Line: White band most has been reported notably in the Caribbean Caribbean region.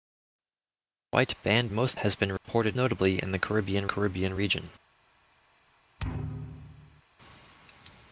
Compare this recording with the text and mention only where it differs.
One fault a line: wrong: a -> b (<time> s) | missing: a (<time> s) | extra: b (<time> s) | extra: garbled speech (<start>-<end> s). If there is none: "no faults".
no faults